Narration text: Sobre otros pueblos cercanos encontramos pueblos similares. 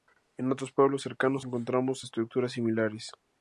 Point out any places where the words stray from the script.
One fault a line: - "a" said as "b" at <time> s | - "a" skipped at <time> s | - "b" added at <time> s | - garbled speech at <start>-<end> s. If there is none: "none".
- "Sobre" said as "En" at 0.4 s
- "pueblos" said as "estructuras" at 2.0 s